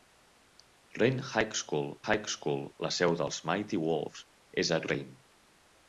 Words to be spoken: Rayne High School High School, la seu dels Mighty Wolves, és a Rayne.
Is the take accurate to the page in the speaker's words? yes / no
yes